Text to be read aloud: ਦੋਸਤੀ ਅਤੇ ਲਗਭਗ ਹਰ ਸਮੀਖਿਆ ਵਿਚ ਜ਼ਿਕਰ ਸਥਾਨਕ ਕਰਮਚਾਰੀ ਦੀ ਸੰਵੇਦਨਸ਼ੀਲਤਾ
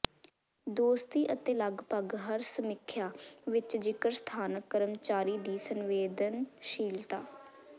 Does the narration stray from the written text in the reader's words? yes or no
no